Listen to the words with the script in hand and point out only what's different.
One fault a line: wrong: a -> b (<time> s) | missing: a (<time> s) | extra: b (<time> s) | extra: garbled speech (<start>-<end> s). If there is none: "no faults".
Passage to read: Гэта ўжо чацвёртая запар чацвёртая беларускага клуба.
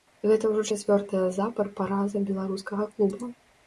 wrong: чацвёртая -> параза (1.8 s)